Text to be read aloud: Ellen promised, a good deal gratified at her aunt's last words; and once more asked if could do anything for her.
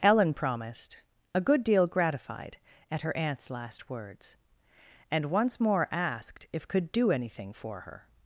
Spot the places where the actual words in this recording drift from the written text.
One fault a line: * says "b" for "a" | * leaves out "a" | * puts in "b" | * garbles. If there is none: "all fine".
all fine